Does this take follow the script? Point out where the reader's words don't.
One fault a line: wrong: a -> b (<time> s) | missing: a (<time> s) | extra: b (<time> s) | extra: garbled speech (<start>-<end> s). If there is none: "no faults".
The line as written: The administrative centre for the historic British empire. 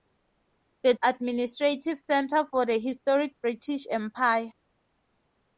no faults